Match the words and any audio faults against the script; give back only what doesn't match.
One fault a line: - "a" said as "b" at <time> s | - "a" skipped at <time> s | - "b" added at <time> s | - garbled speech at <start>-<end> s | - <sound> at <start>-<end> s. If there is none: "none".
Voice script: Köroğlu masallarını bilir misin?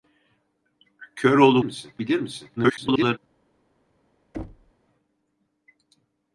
- "masallarını" said as "misin" at 1.6 s
- garbled speech at 2.6-3.2 s
- thud at 4.3-4.7 s